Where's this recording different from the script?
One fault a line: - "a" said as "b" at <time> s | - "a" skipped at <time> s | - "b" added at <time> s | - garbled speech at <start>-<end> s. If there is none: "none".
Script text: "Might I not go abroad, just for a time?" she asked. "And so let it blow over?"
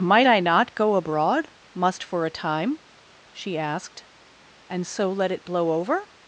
- "just" said as "must" at 1.7 s